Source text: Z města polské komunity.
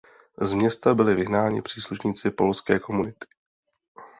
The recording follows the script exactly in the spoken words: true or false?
false